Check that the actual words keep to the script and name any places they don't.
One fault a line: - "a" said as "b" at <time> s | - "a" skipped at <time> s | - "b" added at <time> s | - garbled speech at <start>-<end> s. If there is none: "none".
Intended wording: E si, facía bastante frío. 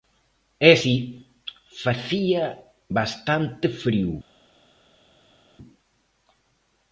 none